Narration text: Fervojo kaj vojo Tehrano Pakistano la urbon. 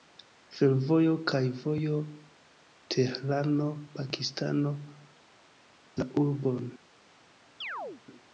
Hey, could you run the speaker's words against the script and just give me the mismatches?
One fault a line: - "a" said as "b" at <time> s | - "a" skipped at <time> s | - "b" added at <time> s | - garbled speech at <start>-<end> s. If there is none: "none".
none